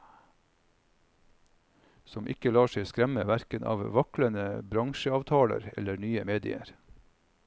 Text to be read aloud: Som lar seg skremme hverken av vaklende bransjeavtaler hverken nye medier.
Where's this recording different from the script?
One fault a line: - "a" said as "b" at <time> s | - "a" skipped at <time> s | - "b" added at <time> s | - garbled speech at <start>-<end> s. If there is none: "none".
- "ikke" added at 2.3 s
- "hverken" said as "eller" at 5.8 s